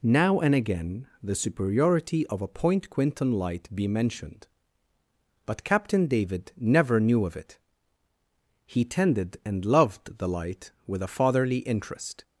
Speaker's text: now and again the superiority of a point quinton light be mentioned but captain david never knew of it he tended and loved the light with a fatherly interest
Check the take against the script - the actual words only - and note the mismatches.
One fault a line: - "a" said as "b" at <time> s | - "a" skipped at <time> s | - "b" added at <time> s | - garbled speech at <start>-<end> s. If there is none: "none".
none